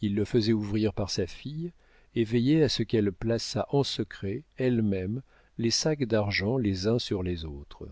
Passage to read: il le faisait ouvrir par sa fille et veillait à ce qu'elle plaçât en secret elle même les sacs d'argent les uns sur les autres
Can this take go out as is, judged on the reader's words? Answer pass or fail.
pass